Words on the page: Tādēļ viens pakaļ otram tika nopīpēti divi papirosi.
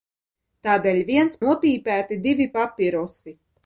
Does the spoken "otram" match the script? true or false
false